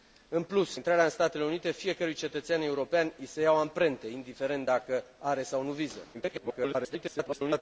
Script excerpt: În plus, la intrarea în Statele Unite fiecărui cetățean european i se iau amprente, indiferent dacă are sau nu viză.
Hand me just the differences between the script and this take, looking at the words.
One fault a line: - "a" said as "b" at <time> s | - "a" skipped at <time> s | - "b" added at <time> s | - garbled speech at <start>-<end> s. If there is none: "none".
- "la" skipped at 0.8 s
- garbled speech at 6.1-7.6 s